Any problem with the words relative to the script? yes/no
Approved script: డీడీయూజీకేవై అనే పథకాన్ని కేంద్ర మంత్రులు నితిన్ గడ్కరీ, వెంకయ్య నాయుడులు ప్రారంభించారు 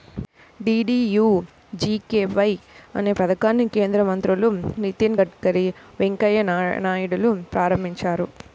no